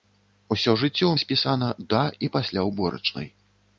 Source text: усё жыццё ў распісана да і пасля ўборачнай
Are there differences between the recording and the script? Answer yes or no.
no